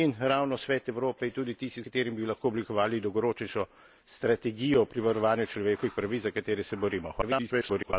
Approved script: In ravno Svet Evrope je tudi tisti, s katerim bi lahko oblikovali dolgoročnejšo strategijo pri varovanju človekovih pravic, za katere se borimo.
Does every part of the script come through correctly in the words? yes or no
no